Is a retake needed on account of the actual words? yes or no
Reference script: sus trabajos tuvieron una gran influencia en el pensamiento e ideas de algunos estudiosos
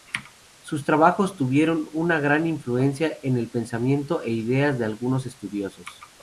no